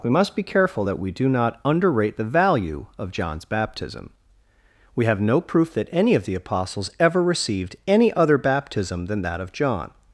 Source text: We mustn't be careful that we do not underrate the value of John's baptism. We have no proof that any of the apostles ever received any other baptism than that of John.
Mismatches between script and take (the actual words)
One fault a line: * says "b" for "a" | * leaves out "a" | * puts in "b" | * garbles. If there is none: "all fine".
* says "must" for "mustn't"